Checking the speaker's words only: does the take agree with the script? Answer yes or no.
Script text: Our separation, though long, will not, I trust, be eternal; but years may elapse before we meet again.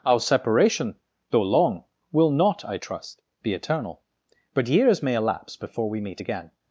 yes